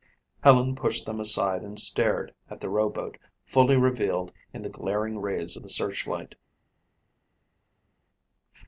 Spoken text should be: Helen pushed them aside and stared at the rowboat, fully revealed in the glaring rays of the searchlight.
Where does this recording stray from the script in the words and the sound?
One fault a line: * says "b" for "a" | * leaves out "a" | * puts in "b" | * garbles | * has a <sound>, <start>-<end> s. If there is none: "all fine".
all fine